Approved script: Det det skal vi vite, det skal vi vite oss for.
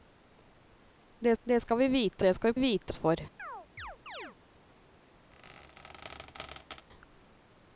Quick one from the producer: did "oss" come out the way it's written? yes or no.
yes